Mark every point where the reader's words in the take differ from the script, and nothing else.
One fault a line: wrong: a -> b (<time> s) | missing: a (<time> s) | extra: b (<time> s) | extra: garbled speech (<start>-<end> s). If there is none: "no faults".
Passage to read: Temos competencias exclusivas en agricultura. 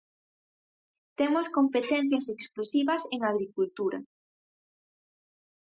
no faults